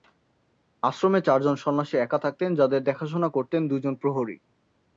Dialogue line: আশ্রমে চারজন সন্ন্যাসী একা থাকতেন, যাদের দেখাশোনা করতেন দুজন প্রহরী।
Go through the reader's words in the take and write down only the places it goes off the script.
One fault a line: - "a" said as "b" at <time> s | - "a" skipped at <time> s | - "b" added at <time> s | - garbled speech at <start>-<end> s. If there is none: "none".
none